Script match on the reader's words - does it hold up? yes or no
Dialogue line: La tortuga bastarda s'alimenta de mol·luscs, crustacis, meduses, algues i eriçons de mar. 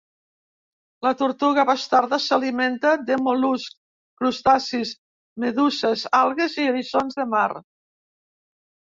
yes